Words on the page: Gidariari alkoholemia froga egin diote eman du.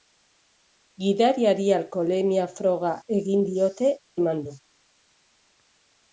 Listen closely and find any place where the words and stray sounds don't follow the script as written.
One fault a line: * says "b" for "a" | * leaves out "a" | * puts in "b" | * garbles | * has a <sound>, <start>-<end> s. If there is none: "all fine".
all fine